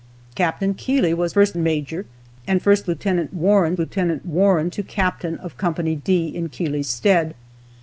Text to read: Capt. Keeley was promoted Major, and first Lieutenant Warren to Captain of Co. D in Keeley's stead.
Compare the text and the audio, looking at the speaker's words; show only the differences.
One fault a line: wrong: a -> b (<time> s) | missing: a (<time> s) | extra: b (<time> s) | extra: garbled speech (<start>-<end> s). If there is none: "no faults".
wrong: promoted -> first (1.3 s)
extra: Lieutenant Warren (3.8 s)